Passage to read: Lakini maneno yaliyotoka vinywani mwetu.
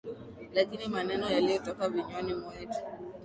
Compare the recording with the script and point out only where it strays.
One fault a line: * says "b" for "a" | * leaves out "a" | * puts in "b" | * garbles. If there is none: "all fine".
all fine